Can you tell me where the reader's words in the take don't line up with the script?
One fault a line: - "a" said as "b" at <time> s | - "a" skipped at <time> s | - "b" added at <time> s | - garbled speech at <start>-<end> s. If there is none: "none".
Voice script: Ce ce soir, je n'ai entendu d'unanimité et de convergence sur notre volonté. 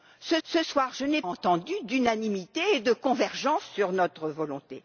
none